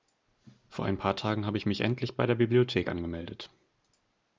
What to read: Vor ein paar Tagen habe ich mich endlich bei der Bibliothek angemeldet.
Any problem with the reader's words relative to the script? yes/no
no